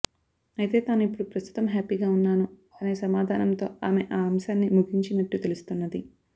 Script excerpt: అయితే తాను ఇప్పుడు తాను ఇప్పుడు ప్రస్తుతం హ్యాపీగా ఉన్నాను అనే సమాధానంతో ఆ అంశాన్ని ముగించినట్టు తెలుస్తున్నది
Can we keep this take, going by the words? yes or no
no